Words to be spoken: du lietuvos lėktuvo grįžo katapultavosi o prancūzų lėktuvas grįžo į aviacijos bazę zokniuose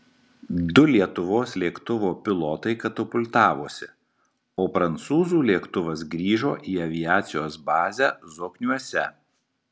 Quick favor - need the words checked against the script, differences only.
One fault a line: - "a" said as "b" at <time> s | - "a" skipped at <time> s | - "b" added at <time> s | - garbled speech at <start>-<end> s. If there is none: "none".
- "grįžo" said as "pilotai" at 2.3 s